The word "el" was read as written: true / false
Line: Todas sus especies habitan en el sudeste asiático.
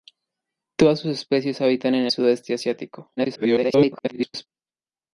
false